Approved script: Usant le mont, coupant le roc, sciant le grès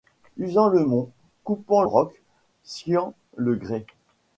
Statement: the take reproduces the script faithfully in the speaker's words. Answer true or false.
false